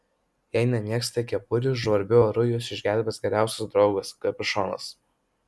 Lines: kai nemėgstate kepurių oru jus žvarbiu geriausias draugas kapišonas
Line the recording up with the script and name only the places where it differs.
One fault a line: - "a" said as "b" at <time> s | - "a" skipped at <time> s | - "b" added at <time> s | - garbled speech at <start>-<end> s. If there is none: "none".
- "kai" said as "jei" at 0.6 s
- "žvarbiu" added at 1.8 s
- "žvarbiu" said as "išgelbės" at 2.8 s